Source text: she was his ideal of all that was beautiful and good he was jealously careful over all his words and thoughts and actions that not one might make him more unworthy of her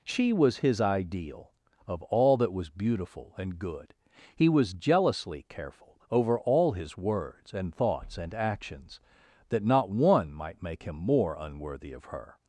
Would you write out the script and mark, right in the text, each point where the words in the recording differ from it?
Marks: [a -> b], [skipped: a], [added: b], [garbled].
she was his ideal of all that was beautiful and good he was jealously careful over all his words and thoughts and actions that not one might make him more unworthy of her